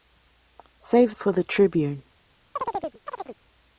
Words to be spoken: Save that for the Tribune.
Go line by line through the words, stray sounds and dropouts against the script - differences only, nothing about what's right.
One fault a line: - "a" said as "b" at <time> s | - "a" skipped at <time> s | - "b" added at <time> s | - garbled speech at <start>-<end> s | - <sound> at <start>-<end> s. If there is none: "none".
- "that" skipped at 1.1 s
- chirp at 2.6-3.4 s